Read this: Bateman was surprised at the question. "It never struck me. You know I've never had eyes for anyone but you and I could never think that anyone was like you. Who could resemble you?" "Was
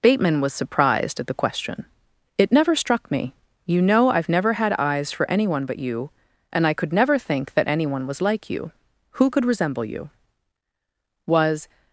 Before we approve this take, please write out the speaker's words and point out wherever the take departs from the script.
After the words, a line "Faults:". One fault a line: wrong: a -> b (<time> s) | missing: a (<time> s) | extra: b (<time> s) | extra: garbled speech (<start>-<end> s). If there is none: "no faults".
Bateman was surprised at the question. "It never struck me. You know I've never had eyes for anyone but you and I could never think that anyone was like you. Who could resemble you?" "Was
Faults:
no faults